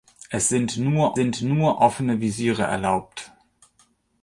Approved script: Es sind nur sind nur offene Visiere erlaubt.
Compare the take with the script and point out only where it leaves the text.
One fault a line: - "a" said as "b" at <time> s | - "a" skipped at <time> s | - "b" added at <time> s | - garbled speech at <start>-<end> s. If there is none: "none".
none